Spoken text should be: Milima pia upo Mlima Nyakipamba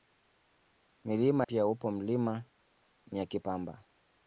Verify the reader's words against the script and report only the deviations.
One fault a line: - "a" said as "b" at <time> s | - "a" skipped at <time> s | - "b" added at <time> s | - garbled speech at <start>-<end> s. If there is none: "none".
none